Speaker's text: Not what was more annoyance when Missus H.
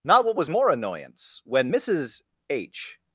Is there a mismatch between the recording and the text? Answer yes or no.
no